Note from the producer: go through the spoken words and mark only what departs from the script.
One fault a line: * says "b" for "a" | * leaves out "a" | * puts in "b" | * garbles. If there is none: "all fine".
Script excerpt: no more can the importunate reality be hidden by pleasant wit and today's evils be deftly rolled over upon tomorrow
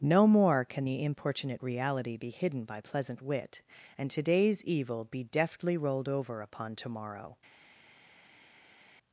* says "evil" for "evils"